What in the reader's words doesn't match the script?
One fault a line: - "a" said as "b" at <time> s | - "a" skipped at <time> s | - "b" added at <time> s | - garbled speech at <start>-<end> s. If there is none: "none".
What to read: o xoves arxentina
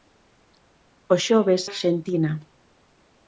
none